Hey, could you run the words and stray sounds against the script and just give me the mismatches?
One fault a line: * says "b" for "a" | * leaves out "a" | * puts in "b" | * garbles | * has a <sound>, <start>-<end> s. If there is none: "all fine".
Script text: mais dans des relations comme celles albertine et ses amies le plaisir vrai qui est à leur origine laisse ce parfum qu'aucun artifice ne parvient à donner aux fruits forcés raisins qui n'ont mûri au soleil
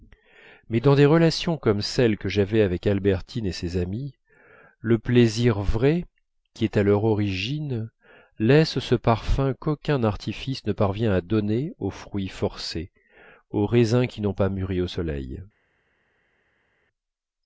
* puts in "que j'avais avec"
* puts in "aux"
* puts in "pas"